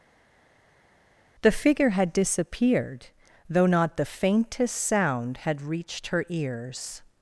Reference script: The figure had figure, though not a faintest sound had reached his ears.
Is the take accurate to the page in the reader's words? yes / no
no